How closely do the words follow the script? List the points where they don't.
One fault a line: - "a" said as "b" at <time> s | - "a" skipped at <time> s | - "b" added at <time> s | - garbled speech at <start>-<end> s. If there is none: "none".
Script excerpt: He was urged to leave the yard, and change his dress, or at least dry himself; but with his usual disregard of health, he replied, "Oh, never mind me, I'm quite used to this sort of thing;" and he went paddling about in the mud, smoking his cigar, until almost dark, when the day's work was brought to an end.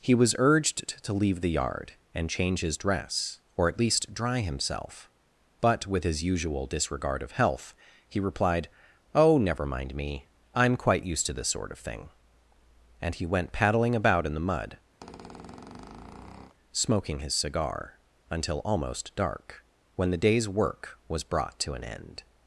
none